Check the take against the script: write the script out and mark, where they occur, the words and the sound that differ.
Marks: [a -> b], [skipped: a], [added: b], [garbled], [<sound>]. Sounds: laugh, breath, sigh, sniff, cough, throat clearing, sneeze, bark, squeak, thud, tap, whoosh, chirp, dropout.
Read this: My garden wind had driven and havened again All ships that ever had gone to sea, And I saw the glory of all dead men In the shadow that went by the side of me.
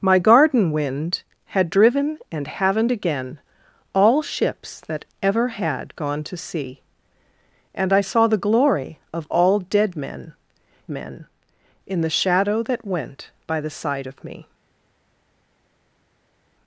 My garden wind had driven and havened again All ships that ever had gone to sea, And I saw the glory of all dead men [added: men] In the shadow that went by the side of me.